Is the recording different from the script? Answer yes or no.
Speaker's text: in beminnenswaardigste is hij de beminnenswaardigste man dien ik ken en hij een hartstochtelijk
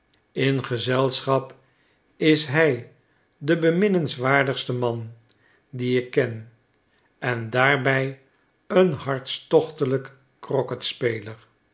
yes